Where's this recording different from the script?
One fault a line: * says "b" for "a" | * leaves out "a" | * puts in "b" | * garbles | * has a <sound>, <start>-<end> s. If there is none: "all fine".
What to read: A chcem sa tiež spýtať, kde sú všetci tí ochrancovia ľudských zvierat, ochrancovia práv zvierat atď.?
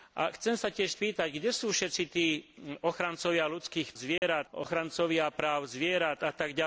* has a dropout, 4.2-4.2 s